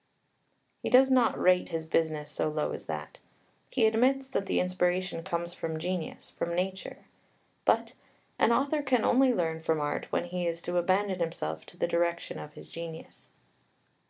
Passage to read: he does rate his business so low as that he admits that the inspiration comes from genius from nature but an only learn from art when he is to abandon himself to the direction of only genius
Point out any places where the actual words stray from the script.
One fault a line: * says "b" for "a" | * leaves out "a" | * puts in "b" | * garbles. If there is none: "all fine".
* puts in "not"
* puts in "author can"
* says "his" for "only"